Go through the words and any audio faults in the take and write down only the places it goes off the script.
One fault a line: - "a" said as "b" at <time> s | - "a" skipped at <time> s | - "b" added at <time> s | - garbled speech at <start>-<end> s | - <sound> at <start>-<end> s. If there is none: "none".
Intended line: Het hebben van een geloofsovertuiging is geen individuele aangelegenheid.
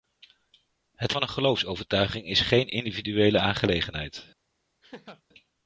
- "hebben" skipped at 1.1 s
- laugh at 4.8-5.2 s